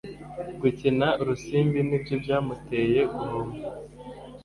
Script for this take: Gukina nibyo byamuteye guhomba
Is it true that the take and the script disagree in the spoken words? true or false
true